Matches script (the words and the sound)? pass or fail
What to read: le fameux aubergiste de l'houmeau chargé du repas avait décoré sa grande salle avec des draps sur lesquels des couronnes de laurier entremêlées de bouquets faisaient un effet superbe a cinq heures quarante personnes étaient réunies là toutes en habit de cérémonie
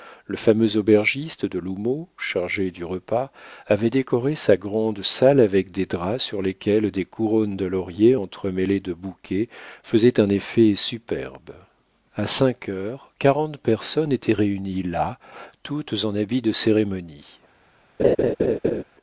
fail